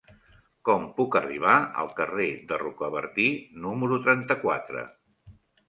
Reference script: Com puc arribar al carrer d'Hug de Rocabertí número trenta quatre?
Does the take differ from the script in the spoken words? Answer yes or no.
yes